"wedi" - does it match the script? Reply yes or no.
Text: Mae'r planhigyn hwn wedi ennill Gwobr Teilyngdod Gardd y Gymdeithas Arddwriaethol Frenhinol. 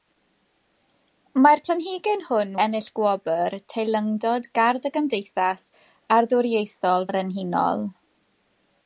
no